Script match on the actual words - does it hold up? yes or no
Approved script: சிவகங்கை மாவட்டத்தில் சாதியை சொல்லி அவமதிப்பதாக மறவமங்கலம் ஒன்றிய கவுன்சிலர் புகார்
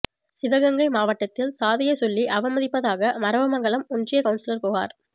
yes